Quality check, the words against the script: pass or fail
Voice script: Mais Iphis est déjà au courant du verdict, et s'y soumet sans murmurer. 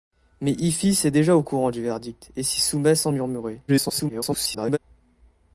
fail